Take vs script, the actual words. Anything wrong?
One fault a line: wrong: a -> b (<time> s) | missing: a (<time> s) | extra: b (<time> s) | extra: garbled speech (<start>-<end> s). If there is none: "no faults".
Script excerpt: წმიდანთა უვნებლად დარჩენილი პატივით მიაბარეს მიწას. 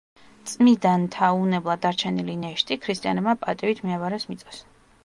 extra: ნეშტი ქრისტიანებმა (2.4 s)